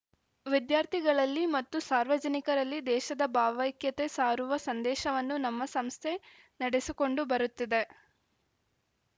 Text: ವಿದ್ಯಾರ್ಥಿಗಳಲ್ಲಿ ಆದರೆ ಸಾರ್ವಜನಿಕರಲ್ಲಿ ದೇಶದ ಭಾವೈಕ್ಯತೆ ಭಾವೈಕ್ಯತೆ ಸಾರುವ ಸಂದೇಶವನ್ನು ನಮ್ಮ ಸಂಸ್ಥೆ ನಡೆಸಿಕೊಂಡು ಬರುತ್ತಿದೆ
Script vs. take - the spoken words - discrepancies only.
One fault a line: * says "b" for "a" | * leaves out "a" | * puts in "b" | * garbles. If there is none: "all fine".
* says "ಮತ್ತು" for "ಆದರೆ"
* leaves out "ಭಾವೈಕ್ಯತೆ"